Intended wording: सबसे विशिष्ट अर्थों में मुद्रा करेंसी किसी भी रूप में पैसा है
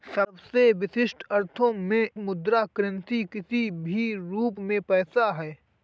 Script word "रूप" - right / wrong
right